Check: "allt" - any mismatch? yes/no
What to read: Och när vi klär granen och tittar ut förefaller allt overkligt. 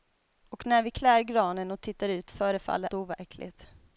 yes